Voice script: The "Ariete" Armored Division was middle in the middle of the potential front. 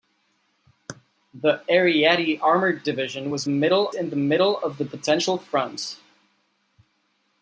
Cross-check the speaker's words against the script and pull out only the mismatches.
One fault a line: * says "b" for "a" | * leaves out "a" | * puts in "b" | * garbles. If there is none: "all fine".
all fine